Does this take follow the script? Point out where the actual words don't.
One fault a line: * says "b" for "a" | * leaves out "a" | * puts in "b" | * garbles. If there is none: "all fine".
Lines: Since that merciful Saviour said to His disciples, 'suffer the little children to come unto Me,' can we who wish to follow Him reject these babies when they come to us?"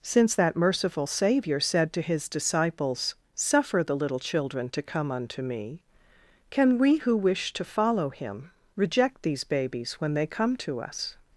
all fine